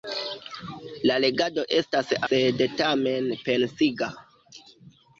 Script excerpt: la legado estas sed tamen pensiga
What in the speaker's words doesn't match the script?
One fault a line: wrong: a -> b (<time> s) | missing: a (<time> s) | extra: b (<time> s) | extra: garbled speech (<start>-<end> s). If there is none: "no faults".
no faults